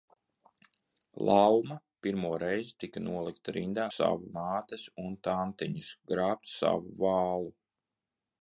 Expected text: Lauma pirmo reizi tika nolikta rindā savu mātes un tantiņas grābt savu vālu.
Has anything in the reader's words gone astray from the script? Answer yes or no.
no